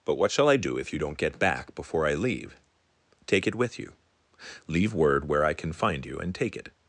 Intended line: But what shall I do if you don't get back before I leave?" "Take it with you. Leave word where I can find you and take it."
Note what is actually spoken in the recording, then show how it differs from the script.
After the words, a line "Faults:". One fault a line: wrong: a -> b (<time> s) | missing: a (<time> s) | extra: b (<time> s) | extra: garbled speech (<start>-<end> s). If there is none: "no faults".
But what shall I do if you don't get back before I leave?" "Take it with you. Leave word where I can find you and take it."
Faults:
no faults